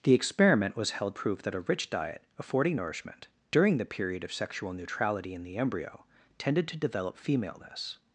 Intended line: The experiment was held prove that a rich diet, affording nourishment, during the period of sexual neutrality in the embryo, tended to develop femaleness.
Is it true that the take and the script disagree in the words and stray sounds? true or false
false